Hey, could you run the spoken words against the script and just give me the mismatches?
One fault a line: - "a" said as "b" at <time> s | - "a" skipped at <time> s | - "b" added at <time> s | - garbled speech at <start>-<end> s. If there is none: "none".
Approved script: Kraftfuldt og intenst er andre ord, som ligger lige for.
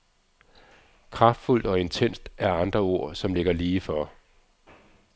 none